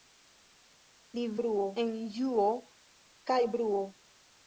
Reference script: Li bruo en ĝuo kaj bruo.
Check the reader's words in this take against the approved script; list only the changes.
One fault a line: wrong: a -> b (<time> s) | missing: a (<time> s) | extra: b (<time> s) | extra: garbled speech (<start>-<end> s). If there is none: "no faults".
no faults